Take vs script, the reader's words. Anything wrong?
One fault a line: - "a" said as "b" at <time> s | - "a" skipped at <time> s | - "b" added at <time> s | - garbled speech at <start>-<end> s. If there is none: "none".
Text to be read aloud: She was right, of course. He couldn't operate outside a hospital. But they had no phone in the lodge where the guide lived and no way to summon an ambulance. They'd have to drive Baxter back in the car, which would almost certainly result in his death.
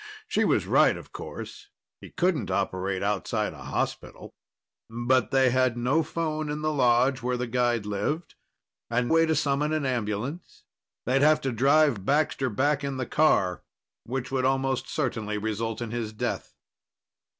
- "no" skipped at 9.1 s